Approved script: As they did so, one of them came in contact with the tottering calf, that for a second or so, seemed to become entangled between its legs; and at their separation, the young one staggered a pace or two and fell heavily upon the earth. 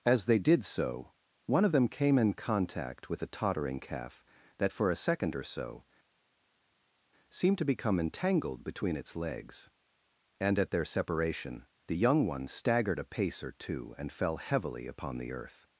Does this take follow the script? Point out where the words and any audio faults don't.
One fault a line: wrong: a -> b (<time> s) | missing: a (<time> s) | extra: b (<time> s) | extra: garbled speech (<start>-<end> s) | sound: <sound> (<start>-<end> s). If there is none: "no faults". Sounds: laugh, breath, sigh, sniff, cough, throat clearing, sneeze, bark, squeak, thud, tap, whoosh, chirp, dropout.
no faults